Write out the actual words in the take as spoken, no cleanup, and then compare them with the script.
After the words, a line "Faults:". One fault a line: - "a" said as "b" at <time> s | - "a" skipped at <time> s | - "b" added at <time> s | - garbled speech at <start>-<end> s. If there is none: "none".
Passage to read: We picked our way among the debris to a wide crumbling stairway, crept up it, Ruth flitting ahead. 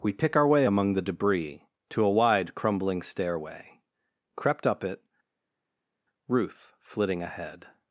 We pick our way among the debris to a wide crumbling stairway, crept up it, Ruth flitting ahead.
Faults:
- "picked" said as "pick" at 0.1 s